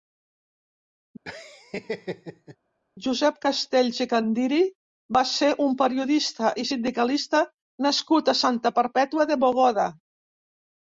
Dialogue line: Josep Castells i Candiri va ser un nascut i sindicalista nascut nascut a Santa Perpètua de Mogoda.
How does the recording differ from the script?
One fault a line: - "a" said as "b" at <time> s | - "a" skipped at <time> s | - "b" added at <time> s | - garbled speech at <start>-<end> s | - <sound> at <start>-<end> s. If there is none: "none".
- laugh at 1.3-2.6 s
- "nascut" said as "periodista" at 5.8 s
- "nascut" skipped at 8.3 s